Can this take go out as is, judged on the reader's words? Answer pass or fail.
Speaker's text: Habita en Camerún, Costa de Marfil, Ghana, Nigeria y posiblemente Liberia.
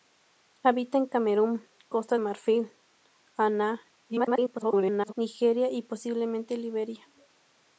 fail